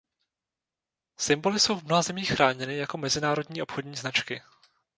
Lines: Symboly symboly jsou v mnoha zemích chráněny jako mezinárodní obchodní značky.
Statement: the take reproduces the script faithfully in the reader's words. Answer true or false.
false